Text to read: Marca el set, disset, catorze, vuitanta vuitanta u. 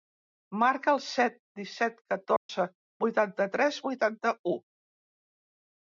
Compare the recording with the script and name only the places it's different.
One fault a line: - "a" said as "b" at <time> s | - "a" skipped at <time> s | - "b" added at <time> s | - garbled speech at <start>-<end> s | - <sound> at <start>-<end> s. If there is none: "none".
- dropout at 2.4-2.5 s
- "tres" added at 3.6 s